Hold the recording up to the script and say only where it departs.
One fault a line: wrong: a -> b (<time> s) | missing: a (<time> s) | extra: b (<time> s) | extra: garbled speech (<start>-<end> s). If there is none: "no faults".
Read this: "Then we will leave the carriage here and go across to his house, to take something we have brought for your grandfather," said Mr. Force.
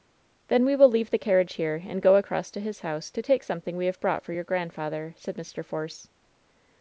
no faults